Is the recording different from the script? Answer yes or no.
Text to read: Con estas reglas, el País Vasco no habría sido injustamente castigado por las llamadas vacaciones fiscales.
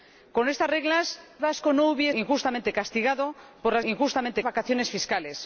yes